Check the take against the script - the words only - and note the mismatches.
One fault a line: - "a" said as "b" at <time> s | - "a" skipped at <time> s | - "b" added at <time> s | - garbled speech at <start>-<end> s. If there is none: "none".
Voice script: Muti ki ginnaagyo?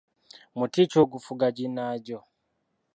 - "ogufuga" added at 1.0 s